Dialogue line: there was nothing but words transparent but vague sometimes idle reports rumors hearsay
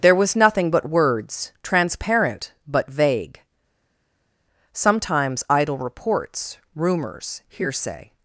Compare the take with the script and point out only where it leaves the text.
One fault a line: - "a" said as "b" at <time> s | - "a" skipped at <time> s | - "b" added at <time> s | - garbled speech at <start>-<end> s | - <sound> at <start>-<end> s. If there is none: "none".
none